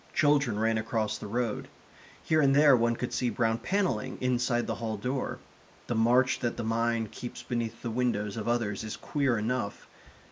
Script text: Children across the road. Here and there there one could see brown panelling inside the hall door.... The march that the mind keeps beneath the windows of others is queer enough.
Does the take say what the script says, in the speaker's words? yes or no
no